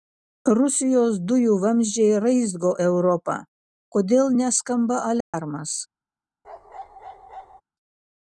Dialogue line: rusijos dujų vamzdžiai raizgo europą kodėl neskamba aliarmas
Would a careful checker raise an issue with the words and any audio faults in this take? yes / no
yes